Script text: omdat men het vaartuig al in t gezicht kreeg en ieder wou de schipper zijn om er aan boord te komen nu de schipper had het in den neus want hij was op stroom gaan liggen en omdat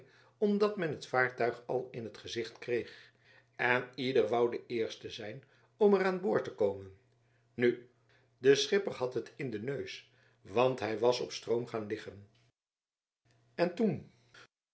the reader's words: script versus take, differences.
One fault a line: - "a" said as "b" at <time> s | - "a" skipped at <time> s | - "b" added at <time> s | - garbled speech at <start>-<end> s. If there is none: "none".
- "schipper" said as "eerste" at 4.7 s
- "omdat" said as "toen" at 13.8 s